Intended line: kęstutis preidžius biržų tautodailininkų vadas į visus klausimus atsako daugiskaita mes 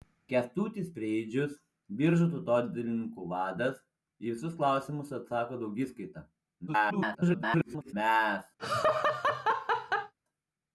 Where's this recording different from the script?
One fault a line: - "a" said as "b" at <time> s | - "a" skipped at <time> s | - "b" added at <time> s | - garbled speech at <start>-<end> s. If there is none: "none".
- garbled speech at 6.7-7.9 s